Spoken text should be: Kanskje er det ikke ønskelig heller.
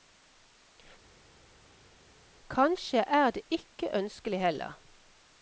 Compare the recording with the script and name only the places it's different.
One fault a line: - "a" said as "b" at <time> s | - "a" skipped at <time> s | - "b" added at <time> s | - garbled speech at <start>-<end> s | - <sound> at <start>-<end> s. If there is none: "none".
none